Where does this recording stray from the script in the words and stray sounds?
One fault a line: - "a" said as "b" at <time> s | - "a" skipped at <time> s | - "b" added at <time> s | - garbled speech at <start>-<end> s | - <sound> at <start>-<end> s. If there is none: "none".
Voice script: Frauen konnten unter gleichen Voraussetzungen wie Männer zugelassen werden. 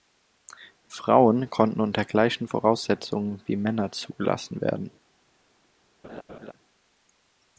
- laugh at 6.0-6.5 s